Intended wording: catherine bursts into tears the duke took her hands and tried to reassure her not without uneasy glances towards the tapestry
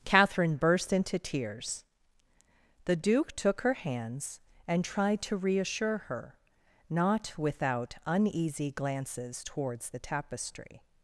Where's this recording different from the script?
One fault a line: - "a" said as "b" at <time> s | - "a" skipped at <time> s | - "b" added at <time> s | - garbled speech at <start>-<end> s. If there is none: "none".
- "bursts" said as "burst" at 0.6 s